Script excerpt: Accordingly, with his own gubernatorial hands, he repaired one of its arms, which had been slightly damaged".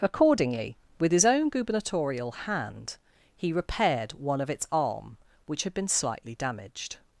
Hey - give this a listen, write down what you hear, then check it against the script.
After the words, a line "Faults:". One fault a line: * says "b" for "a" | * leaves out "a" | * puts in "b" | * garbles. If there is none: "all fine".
Accordingly, with his own gubernatorial hand, he repaired one of its arm, which had been slightly damaged".
Faults:
* says "hand" for "hands"
* says "arm" for "arms"